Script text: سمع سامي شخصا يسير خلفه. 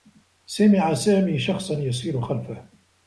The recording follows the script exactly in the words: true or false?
true